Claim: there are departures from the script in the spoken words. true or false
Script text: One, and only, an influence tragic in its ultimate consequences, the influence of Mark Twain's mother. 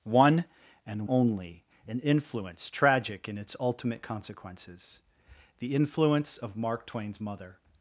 false